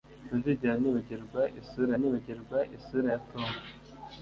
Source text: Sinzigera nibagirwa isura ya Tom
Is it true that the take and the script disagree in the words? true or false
true